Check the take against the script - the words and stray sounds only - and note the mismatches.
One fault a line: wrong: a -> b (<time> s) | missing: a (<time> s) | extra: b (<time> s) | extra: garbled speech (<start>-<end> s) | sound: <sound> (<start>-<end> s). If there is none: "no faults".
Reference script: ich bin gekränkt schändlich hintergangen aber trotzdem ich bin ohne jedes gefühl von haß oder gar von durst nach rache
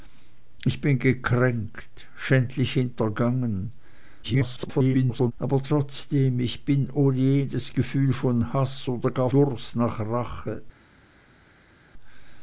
extra: garbled speech (4.2-5.3 s)
missing: von (9.3 s)